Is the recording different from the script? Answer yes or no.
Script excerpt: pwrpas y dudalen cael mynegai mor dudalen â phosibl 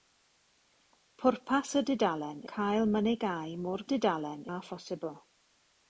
no